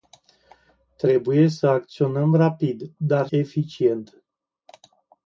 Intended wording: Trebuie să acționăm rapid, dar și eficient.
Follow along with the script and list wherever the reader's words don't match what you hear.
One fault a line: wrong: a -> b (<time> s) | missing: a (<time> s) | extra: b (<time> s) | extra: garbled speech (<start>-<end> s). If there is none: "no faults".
missing: și (3.3 s)